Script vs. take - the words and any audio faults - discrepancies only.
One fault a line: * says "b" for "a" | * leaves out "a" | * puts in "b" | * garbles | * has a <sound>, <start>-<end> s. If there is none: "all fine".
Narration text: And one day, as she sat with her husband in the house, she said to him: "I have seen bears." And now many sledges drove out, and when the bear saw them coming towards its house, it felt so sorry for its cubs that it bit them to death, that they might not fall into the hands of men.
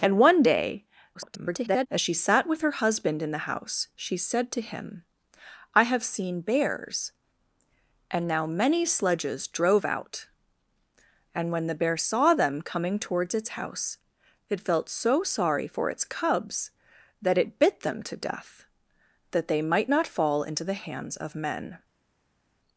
* garbles